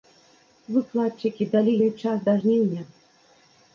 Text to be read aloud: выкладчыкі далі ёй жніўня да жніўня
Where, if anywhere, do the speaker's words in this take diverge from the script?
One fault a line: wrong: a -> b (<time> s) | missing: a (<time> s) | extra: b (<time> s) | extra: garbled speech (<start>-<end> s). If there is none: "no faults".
wrong: жніўня -> час (2.1 s)